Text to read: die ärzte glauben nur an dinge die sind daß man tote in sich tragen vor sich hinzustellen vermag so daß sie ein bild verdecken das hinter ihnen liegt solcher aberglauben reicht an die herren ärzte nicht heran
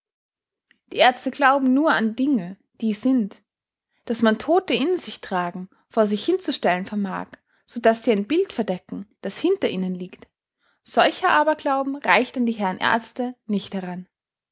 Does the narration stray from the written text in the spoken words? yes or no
no